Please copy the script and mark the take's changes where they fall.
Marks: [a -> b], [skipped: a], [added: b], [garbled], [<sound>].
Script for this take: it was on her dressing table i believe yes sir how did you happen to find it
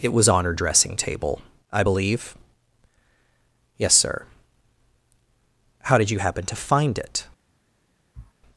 it was on her dressing table i believe yes sir how did you happen to find it [sniff]